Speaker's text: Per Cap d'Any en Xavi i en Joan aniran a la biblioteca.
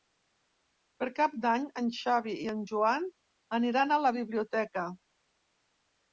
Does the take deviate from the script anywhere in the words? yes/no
no